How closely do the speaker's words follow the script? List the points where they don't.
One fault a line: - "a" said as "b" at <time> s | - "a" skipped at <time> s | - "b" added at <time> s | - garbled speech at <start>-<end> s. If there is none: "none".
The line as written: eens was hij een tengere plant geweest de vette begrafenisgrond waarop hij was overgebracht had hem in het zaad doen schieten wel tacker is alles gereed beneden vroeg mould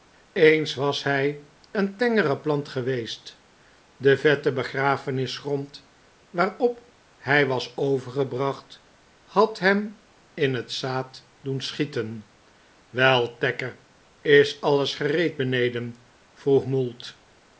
none